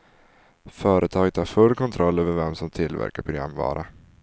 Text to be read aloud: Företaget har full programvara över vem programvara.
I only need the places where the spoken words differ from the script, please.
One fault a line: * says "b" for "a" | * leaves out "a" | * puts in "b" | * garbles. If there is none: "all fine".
* says "kontroll" for "programvara"
* puts in "som tillverkar"